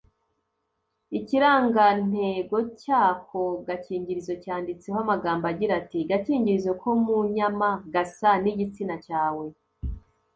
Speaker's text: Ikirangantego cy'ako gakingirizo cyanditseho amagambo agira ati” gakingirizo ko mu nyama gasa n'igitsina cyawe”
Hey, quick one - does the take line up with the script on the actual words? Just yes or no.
yes